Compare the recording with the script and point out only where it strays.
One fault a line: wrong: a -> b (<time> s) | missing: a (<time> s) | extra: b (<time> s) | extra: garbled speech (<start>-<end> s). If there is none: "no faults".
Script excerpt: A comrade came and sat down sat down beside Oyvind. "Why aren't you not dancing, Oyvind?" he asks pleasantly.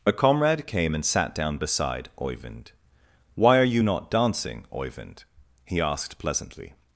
missing: sat down (1.6 s)
wrong: aren't -> are (3.6 s)
wrong: asks -> asked (5.8 s)